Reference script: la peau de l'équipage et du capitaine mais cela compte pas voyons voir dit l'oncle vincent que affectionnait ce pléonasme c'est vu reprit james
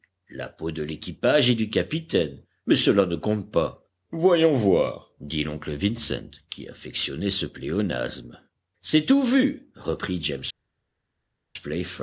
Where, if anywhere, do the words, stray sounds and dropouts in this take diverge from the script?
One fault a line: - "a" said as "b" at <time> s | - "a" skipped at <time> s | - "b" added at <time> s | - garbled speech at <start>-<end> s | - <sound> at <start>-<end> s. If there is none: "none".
- "ne" added at 3.0 s
- "que" said as "qui" at 6.5 s
- "tout" added at 9.1 s